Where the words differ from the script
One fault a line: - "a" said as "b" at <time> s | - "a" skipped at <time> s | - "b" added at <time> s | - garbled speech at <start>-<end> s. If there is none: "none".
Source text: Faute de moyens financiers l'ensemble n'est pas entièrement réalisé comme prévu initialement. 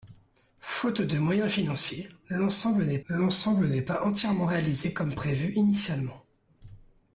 - "l'ensemble n'est" added at 3.1 s